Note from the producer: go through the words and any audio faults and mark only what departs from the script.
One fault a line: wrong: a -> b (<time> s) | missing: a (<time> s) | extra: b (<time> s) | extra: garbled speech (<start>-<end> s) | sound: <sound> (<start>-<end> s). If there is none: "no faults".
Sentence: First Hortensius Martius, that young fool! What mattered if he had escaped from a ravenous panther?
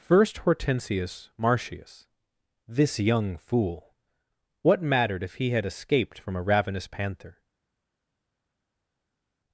wrong: that -> this (2.7 s)